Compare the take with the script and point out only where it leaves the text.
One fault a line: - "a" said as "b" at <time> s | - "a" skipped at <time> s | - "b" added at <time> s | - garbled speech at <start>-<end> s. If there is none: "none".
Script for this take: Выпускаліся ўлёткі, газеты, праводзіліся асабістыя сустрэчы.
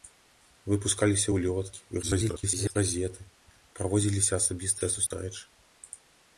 - garbled speech at 2.0-2.8 s